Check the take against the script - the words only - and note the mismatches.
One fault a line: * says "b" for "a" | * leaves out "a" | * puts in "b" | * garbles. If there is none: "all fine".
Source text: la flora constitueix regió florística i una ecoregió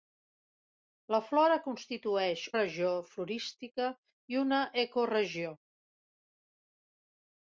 all fine